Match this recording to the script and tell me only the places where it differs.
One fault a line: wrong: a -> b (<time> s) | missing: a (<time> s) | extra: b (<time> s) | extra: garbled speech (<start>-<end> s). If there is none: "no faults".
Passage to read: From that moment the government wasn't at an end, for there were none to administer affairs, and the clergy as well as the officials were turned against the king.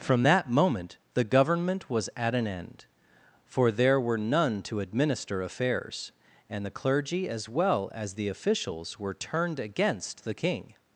wrong: wasn't -> was (1.9 s)